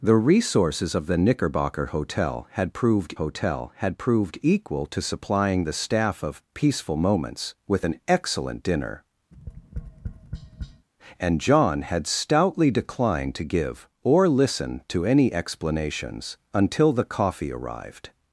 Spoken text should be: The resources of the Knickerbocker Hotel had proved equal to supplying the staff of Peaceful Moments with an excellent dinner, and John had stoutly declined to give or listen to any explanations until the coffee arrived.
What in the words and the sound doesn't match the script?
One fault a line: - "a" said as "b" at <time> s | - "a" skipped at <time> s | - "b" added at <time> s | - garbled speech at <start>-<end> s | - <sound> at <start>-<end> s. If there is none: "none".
- "Hotel had proved" added at 3.1 s
- tap at 9.3-10.9 s